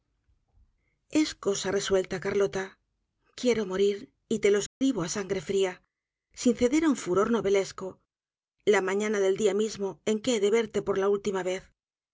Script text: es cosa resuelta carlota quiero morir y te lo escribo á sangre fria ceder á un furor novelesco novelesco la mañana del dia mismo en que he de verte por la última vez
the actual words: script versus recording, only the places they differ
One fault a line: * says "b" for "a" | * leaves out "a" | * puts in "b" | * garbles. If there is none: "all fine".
* puts in "sin"
* leaves out "novelesco"